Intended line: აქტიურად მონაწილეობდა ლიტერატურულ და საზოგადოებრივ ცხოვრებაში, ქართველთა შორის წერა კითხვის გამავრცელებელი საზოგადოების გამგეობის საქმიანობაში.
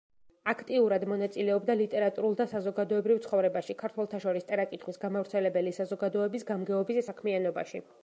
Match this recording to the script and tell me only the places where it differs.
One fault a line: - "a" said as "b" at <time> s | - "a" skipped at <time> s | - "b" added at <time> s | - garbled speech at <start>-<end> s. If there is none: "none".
none